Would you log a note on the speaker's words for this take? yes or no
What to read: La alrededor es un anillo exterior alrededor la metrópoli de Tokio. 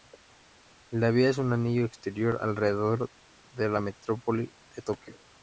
yes